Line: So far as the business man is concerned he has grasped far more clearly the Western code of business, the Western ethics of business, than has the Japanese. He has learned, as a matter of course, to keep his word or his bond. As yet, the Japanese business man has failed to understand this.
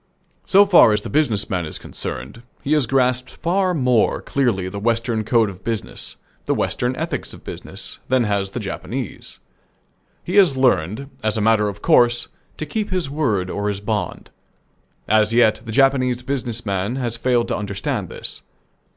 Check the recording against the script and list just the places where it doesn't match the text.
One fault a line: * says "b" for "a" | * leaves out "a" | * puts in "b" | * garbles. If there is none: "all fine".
all fine